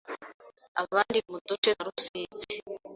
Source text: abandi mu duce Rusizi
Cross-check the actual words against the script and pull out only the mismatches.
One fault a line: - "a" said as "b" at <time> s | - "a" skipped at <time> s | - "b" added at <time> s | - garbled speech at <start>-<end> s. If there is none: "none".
none